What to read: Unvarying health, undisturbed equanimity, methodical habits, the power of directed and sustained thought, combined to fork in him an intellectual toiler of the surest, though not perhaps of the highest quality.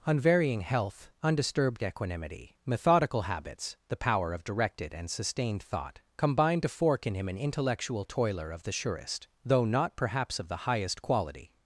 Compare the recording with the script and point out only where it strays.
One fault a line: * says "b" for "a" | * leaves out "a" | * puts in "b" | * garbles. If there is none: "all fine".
all fine